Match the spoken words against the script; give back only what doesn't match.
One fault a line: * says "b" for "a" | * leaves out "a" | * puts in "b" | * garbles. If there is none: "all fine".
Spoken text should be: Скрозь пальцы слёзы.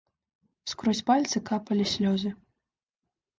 * puts in "капалі"